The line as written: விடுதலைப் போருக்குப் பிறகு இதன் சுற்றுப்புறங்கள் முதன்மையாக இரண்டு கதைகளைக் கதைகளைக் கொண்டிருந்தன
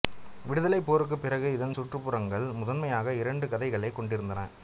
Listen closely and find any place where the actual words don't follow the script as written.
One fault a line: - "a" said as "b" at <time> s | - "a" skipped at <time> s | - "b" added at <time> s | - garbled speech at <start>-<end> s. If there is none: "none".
- "கதைகளைக்" skipped at 4.0 s